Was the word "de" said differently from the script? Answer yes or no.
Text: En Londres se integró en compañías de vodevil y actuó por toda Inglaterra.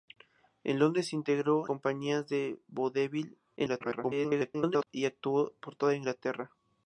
no